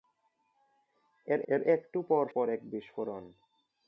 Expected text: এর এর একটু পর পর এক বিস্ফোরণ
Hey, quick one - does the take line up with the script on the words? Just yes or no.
yes